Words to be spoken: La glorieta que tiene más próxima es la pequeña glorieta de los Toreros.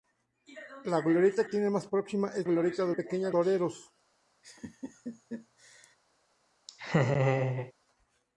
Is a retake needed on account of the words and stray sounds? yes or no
yes